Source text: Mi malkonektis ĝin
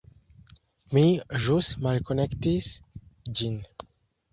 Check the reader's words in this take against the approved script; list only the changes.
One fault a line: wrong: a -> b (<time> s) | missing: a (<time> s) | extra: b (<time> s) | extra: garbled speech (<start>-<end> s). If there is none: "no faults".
extra: ĵus (1.5 s)